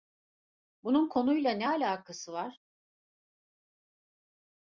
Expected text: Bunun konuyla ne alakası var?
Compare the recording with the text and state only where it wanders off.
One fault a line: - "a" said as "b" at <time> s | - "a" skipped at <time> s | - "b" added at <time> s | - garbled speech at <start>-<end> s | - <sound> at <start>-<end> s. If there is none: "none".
none